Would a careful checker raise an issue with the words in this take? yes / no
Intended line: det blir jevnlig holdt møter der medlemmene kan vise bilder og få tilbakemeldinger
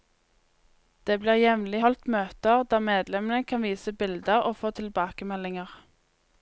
no